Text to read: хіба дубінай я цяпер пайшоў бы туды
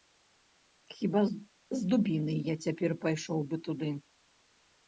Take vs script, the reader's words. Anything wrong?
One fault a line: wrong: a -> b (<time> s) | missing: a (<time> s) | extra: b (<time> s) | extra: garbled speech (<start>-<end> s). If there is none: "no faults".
extra: з (1.3 s)